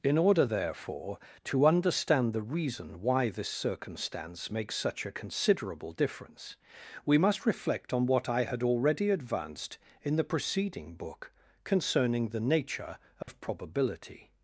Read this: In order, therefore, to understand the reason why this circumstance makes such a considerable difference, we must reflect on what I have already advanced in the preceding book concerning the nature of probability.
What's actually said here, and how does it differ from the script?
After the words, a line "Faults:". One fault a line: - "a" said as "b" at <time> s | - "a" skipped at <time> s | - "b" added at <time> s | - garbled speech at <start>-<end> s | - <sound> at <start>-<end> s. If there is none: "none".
In order, therefore, to understand the reason why this circumstance makes such a considerable difference, we must reflect on what I had already advanced in the preceding book concerning the nature of probability.
Faults:
- "have" said as "had" at 8.5 s
- dropout at 13.2-13.3 s